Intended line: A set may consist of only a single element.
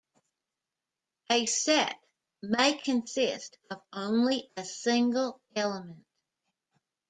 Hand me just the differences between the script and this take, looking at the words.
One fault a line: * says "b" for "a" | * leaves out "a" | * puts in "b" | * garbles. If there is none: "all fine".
all fine